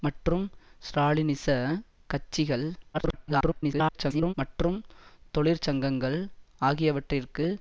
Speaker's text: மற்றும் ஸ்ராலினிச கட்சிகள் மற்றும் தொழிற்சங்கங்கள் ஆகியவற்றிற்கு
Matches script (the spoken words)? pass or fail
fail